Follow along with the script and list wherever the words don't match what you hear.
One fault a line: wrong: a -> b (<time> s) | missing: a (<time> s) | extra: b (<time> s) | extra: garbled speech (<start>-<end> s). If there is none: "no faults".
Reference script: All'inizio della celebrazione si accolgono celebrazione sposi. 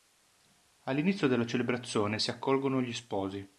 wrong: celebrazione -> gli (2.8 s)